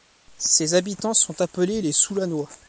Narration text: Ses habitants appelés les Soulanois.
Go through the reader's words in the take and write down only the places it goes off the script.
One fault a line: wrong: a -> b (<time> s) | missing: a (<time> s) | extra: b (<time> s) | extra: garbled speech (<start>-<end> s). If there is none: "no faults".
extra: sont (1.1 s)